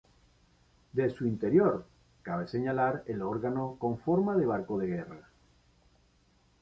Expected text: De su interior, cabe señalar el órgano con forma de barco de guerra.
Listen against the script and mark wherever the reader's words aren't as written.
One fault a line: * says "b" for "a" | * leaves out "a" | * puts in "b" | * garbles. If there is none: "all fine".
all fine